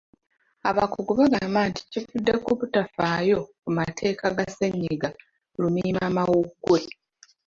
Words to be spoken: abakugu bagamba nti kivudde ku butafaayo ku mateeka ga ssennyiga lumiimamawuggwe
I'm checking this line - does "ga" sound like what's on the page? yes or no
yes